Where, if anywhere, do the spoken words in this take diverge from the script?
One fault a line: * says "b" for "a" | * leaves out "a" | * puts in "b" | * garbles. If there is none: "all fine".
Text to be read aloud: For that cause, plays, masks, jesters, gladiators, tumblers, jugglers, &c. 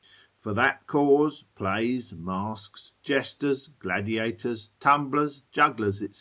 all fine